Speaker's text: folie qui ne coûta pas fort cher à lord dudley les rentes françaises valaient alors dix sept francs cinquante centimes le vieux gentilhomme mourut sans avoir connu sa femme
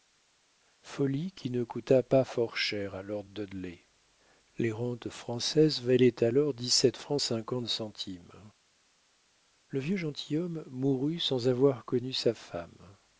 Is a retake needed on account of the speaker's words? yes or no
no